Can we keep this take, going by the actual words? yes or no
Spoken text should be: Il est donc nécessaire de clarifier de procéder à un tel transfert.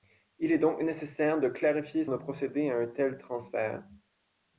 yes